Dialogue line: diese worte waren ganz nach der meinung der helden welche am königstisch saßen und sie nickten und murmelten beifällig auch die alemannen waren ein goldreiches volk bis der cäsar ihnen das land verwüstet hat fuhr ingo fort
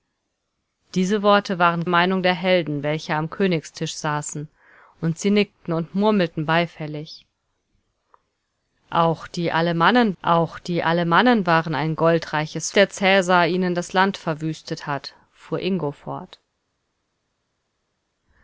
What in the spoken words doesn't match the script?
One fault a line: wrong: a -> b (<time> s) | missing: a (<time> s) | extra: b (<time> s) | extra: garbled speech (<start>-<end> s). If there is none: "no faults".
missing: ganz nach der (1.9 s)
extra: auch die alemannen (10.2 s)
missing: volk bis (12.7 s)